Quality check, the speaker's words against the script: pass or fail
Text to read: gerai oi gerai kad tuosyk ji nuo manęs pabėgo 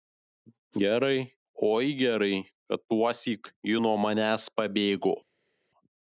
pass